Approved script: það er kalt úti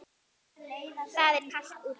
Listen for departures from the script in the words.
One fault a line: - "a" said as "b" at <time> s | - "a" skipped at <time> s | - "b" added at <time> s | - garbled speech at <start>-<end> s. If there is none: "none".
none